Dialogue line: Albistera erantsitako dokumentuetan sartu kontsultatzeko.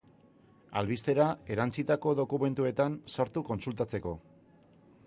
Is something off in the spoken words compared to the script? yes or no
no